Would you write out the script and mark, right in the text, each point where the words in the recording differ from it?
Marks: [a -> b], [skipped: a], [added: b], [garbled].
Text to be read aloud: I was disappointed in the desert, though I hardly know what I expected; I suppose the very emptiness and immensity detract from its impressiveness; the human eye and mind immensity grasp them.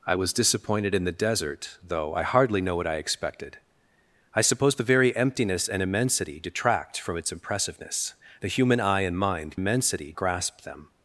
I was disappointed in the desert, though I hardly know what I expected; I suppose the very emptiness and immensity detract from its impressiveness; the human eye and mind immensity grasp them.